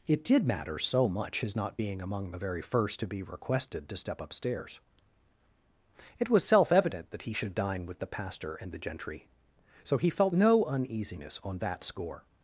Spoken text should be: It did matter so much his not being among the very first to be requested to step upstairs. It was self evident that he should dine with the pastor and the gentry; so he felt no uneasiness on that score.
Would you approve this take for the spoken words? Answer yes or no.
yes